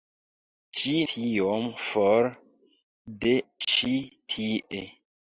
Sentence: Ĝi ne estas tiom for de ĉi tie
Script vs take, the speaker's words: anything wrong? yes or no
yes